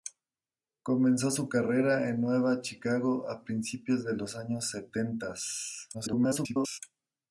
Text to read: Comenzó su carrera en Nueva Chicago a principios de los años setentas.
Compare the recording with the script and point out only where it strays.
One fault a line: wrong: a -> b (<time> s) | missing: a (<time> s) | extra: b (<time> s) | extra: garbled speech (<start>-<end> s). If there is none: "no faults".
extra: garbled speech (5.9-6.8 s)